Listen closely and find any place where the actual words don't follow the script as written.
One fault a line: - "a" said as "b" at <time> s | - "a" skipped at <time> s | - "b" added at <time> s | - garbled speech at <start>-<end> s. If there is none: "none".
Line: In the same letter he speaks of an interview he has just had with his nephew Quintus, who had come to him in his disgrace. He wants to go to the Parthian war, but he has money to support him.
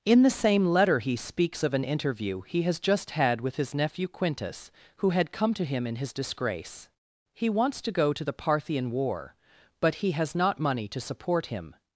- "not" added at 10.3 s